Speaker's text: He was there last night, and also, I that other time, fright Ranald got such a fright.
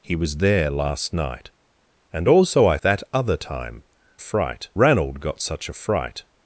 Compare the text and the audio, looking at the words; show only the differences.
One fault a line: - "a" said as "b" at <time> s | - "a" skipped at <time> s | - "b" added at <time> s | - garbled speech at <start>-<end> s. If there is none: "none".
none